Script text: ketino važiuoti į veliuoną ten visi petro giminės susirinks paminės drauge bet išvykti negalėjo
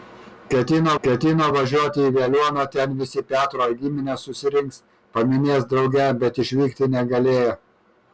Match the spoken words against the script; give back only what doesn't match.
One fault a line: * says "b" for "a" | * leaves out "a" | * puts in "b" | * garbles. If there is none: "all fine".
* puts in "ketino"